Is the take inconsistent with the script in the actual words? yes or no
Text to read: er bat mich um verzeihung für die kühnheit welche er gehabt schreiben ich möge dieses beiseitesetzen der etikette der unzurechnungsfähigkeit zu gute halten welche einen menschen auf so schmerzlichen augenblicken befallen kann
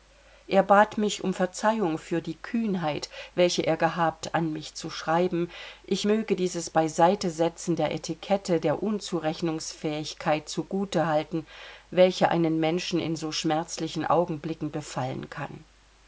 yes